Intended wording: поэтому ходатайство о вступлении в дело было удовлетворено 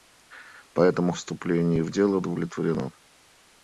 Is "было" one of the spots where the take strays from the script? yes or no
yes